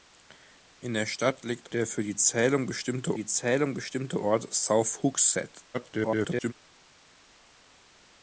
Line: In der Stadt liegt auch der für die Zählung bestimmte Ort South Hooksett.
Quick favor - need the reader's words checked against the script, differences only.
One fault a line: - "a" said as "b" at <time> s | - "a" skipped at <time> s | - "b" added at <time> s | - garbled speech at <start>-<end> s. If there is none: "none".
- "auch" skipped at 1.7 s
- "die Zählung bestimmte" added at 3.1 s
- garbled speech at 5.7-6.5 s